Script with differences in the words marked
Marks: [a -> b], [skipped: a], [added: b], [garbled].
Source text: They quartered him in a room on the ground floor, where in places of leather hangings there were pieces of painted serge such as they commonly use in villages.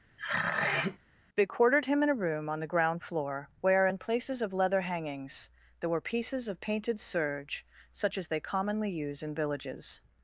They quartered him in a room on the ground floor, where in places of leather hangings there were pieces of painted serge such as they commonly use in villages.